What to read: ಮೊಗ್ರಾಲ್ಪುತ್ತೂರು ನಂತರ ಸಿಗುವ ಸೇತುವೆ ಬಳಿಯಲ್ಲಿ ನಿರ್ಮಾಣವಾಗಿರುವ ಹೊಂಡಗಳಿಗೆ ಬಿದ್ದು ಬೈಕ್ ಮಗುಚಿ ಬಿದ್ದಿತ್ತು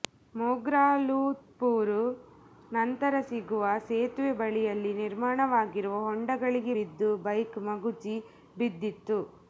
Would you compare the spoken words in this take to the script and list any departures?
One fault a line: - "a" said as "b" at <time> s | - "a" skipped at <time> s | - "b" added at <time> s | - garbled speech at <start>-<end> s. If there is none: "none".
none